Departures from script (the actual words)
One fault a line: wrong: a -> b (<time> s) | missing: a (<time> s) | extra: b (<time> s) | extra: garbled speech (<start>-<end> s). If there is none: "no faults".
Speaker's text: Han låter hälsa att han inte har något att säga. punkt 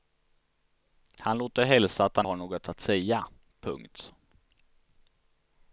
missing: inte (2.3 s)